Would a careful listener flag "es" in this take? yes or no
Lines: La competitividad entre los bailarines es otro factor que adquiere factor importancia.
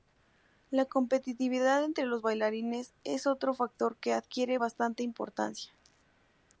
no